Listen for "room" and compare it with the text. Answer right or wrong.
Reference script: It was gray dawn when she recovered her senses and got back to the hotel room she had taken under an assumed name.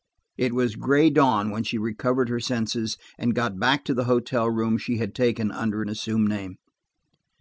right